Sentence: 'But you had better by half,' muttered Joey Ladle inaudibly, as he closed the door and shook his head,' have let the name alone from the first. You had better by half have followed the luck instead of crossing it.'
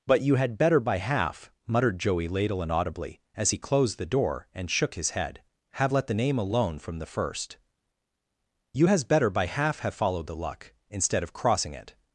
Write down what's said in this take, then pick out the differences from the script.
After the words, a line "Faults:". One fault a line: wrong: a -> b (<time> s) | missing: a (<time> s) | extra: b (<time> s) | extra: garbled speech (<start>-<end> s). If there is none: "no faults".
'But you had better by half,' muttered Joey Ladle inaudibly, as he closed the door and shook his head,' have let the name alone from the first. You has better by half have followed the luck instead of crossing it.'
Faults:
wrong: had -> has (8.8 s)